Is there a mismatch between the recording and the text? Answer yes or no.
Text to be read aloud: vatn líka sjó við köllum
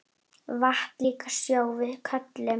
no